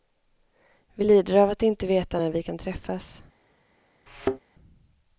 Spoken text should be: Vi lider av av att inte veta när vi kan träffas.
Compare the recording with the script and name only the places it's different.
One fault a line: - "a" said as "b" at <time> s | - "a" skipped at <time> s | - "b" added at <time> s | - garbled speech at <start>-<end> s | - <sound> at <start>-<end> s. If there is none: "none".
- "av" skipped at 1.5 s
- thud at 4.1-4.4 s